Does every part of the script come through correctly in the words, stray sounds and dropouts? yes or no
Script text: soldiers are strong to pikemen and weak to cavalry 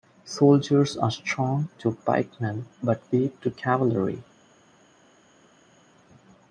no